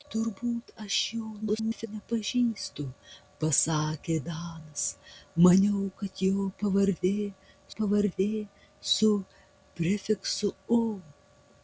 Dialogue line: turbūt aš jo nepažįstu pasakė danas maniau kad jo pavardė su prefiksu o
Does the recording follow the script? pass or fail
fail